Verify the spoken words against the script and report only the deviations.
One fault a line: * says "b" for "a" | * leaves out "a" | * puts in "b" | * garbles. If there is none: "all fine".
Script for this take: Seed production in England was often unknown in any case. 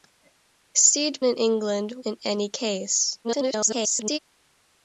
* leaves out "production"
* leaves out "was often unknown"
* garbles